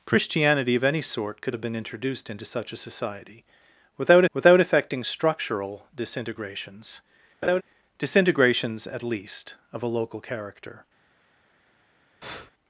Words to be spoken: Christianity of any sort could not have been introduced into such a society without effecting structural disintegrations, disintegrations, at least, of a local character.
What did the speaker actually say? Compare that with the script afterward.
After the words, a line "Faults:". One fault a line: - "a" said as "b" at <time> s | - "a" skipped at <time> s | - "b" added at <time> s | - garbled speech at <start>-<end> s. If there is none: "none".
Christianity of any sort could have been introduced into such a society without without effecting structural disintegrations, disintegrations, at least, of a local character.
Faults:
- "not" skipped at 1.6 s
- "without" added at 4.3 s